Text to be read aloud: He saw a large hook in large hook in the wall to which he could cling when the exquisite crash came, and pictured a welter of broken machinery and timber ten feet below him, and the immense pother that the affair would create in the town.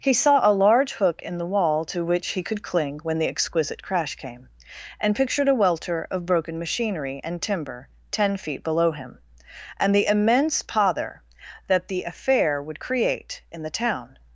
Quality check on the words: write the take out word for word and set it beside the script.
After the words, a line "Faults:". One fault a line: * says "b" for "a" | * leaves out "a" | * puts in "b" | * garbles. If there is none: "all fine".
He saw a large hook in the wall to which he could cling when the exquisite crash came, and pictured a welter of broken machinery and timber ten feet below him, and the immense pother that the affair would create in the town.
Faults:
* leaves out "large hook in"